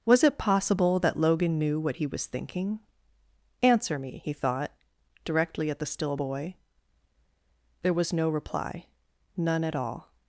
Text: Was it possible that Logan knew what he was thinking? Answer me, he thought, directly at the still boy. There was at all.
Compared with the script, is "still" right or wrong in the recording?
right